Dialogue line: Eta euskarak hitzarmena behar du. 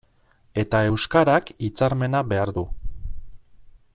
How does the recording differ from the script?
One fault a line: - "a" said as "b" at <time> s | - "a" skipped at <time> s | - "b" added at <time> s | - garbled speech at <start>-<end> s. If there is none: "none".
none